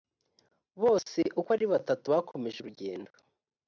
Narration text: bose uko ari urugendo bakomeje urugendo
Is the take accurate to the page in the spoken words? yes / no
no